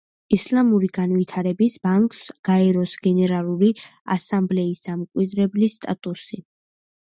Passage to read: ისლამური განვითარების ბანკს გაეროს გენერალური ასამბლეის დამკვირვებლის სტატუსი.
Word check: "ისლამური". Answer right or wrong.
right